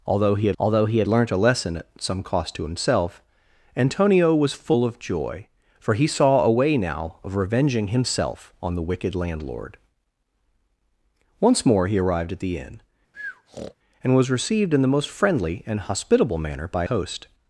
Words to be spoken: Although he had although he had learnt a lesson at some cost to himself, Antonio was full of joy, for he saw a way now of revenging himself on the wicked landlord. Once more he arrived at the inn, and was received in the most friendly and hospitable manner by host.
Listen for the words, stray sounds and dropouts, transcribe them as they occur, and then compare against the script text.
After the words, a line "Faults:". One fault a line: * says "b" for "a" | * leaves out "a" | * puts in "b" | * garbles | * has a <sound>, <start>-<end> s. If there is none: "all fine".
Although he had although he had learnt a lesson at some cost to himself, Antonio was full of joy, for he saw a way now of revenging himself on the wicked landlord. Once more he arrived at the inn, and was received in the most friendly and hospitable manner by host.
Faults:
* has a breath, 13.1-13.7 s